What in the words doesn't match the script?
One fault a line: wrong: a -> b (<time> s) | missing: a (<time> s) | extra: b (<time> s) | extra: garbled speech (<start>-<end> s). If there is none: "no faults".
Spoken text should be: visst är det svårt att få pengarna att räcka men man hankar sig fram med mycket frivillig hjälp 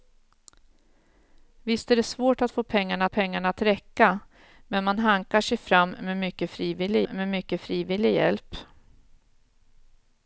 extra: pengarna (3.1 s)
extra: med mycket frivillig (7.0 s)